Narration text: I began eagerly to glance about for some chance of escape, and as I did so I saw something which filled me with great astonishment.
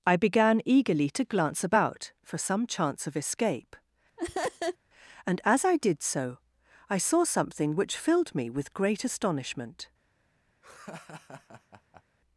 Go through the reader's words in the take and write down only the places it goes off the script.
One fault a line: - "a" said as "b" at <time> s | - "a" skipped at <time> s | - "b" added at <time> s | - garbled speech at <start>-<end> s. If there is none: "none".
none